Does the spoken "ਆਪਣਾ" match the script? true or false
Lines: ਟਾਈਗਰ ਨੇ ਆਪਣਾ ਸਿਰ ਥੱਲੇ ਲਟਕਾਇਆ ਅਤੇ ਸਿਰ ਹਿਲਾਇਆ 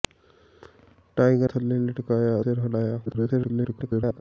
false